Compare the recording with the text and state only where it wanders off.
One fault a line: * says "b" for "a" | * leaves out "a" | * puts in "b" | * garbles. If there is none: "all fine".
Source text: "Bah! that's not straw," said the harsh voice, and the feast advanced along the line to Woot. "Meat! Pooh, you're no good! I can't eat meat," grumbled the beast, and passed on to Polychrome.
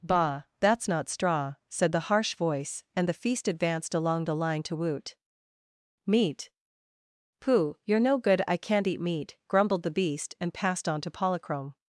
all fine